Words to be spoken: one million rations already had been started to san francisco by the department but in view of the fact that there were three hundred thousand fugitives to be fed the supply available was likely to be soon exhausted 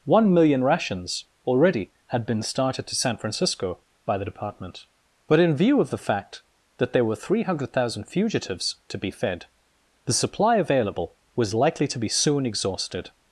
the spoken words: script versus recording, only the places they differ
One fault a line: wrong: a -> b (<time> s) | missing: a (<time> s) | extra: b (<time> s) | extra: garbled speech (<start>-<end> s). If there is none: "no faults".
no faults